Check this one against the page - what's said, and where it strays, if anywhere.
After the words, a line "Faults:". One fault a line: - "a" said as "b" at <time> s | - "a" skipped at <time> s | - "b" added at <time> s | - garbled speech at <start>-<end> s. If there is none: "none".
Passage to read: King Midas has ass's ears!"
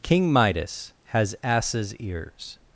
King Midas has ass's ears!"
Faults:
none